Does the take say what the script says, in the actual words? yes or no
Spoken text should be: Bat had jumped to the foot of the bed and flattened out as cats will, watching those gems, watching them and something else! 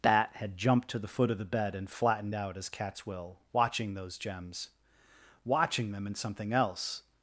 yes